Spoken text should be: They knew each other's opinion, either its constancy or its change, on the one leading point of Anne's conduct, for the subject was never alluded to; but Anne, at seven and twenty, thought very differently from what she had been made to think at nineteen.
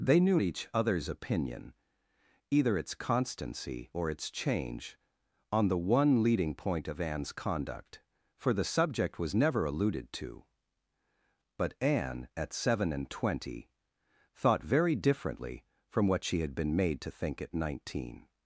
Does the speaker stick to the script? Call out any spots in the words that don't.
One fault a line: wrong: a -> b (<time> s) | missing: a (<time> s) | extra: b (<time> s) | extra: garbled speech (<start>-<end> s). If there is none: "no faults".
no faults